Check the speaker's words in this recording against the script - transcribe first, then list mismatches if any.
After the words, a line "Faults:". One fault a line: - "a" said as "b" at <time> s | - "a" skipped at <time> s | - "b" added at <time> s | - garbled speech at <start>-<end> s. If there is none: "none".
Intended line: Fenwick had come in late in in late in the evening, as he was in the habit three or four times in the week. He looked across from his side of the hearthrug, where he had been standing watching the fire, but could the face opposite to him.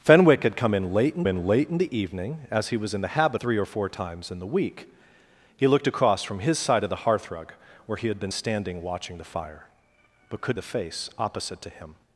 Fenwick had come in late in in late in the evening, as he was in the habit three or four times in the week. He looked across from his side of the hearthrug, where he had been standing watching the fire, but could the face opposite to him.
Faults:
none